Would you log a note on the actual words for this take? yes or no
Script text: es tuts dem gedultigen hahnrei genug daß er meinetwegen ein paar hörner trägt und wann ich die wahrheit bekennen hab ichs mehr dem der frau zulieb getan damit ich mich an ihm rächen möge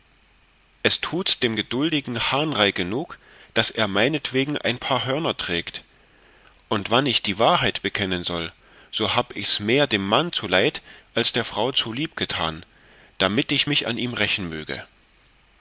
yes